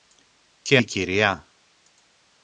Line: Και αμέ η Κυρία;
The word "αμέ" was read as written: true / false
false